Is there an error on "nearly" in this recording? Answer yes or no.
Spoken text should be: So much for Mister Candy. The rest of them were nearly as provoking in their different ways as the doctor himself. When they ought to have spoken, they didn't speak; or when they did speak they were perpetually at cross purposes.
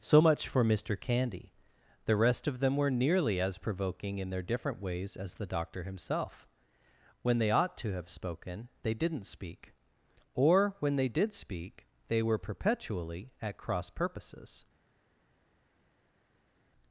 no